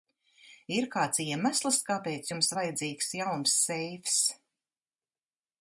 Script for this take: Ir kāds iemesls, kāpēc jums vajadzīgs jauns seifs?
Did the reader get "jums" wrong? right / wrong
right